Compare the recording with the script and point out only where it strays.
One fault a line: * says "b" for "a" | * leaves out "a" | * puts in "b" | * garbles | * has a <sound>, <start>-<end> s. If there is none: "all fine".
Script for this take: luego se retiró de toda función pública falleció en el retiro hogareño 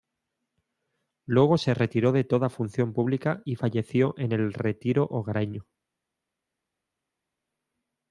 * puts in "y"